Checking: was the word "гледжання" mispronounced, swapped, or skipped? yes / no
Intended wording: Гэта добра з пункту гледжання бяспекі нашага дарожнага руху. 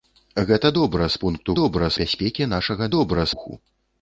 yes